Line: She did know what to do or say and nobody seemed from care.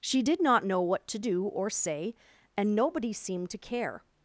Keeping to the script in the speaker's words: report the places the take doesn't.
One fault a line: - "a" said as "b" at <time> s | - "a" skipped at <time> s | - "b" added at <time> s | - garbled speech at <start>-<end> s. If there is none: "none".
- "not" added at 0.4 s
- "from" said as "to" at 3.5 s